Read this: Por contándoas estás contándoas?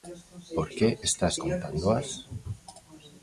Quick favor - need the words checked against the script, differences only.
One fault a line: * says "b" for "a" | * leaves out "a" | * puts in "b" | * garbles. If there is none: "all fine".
* says "que" for "contándoas"